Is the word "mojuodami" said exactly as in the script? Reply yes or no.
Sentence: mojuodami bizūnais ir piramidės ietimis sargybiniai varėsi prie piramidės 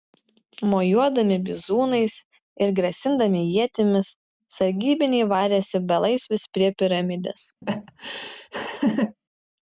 yes